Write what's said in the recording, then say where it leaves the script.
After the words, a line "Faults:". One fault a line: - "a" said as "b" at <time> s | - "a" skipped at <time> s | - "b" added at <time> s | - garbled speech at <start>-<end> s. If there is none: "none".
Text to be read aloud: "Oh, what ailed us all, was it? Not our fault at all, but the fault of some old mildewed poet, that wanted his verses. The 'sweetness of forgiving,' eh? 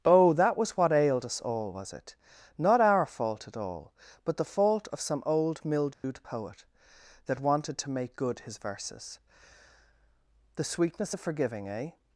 "Oh, that was what ailed us all, was it? Not our fault at all, but the fault of some old mildewed poet, that wanted to make good his verses. The 'sweetness of forgiving,' eh?
Faults:
- "that was" added at 0.3 s
- "to make good" added at 7.8 s